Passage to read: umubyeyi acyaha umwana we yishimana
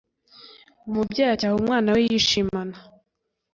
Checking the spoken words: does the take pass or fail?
pass